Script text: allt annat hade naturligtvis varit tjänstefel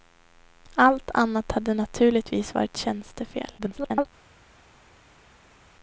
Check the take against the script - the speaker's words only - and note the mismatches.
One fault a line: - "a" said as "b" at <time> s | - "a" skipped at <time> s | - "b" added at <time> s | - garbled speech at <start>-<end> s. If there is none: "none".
- garbled speech at 3.6-4.1 s